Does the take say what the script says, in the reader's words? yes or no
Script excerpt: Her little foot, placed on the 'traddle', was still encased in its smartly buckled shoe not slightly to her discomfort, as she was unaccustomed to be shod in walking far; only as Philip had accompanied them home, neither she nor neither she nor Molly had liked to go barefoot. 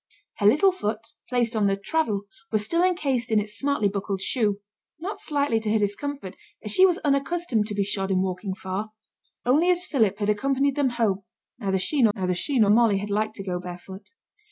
yes